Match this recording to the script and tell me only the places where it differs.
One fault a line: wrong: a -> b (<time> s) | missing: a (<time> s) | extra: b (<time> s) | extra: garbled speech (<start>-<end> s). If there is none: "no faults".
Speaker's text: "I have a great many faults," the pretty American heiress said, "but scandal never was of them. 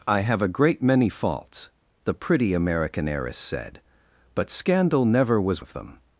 no faults